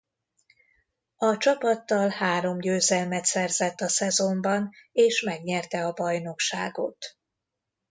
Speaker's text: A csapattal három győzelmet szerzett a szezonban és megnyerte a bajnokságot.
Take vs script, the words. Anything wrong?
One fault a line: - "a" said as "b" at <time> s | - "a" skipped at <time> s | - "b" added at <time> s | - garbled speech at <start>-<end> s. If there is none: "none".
none